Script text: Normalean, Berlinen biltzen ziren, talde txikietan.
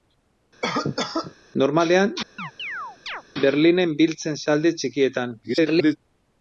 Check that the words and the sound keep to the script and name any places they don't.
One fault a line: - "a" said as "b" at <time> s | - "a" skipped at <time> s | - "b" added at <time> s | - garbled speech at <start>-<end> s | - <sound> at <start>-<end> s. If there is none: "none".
- cough at 0.6-1.3 s
- chirp at 2.4-3.2 s
- "ziren" skipped at 4.4 s
- garbled speech at 5.4-6.0 s